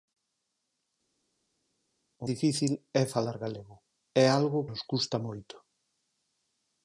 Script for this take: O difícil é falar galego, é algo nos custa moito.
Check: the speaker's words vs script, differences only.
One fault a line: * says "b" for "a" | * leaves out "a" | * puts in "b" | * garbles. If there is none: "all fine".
all fine